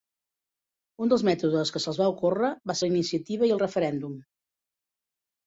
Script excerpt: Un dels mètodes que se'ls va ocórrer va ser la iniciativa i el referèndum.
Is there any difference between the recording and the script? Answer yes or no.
yes